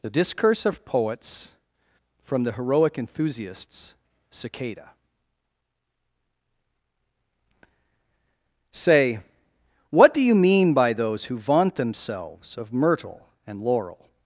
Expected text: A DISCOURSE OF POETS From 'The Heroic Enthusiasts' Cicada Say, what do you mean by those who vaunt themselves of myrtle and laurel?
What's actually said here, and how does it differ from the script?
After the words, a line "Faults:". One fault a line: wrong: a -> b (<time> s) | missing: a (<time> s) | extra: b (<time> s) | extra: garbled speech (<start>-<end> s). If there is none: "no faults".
The DISCOURSE OF POETS From 'The Heroic Enthusiasts' Cicada Say, what do you mean by those who vaunt themselves of myrtle and laurel?
Faults:
wrong: A -> The (0.0 s)